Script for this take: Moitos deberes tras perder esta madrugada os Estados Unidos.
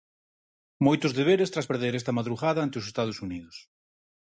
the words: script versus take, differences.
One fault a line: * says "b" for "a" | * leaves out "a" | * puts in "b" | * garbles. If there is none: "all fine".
* puts in "ante"